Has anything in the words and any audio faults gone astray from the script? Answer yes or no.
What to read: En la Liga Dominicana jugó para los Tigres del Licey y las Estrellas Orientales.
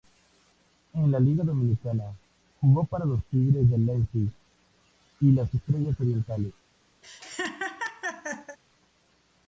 yes